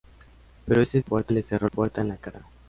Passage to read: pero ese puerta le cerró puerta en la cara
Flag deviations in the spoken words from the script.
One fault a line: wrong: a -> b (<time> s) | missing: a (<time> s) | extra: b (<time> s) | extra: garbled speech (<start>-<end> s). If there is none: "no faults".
no faults